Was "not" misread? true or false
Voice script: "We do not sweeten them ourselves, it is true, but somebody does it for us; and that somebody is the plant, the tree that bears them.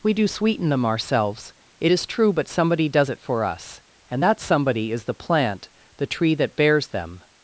true